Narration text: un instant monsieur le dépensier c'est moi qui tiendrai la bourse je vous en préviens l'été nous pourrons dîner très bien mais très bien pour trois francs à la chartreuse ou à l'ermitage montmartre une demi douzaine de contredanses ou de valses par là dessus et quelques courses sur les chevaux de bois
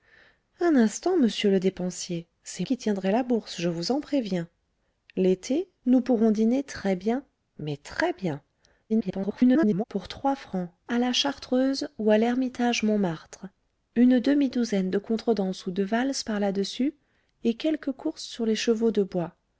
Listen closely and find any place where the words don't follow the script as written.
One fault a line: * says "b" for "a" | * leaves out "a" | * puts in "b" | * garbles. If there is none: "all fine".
* leaves out "moi"
* garbles